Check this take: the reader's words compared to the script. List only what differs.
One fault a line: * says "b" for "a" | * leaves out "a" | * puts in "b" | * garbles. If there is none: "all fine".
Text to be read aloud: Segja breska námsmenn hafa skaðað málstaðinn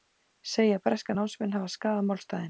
all fine